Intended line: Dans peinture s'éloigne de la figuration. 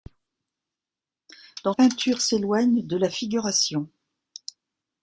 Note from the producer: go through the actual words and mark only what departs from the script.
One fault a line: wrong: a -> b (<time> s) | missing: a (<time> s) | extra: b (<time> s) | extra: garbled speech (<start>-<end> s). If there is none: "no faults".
no faults